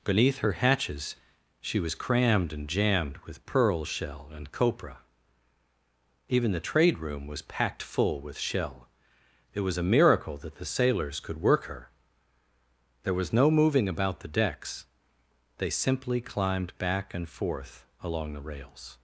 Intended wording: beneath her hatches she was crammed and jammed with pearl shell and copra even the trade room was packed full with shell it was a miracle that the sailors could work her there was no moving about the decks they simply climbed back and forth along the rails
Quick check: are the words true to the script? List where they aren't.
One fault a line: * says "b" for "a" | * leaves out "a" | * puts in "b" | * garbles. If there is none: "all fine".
all fine